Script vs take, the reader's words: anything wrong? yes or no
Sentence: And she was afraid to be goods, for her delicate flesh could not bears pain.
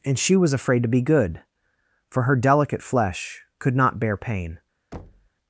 yes